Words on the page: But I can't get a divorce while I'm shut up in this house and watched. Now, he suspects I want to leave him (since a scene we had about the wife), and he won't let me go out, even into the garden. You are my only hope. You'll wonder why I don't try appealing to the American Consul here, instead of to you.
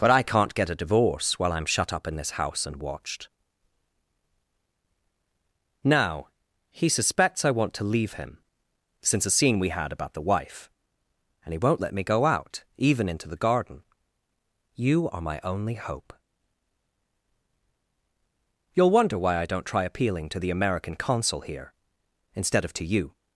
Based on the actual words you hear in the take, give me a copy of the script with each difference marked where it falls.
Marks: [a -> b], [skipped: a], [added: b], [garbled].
But I can't get a divorce while I'm shut up in this house and watched. Now, he suspects I want to leave him (since a scene we had about the wife), and he won't let me go out, even into the garden. You are my only hope. You'll wonder why I don't try appealing to the American Consul here, instead of to you.